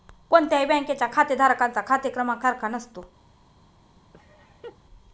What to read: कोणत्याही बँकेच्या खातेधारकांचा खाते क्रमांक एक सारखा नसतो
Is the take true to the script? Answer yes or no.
no